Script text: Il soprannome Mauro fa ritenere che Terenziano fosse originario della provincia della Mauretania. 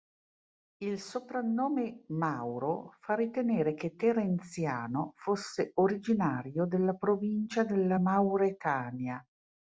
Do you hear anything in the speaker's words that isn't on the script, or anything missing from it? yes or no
no